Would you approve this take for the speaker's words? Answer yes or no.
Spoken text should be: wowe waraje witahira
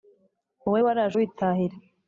yes